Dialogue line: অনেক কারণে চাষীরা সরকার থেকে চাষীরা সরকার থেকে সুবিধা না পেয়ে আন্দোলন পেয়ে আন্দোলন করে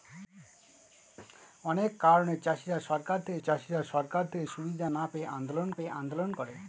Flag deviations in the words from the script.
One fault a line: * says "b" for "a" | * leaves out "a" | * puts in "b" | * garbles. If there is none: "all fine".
all fine